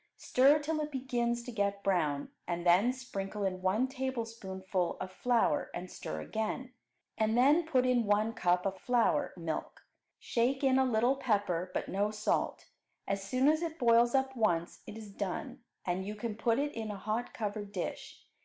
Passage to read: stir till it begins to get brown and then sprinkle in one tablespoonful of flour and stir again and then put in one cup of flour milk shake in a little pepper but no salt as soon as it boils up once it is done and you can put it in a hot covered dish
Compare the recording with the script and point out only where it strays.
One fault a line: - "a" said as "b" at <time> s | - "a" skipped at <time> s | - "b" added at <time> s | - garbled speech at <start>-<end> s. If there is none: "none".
none